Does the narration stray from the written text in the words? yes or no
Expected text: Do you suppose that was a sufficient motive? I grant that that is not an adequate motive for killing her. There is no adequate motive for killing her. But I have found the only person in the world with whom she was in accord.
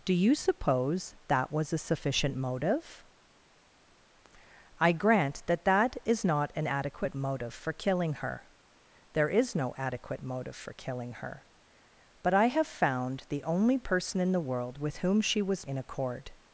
no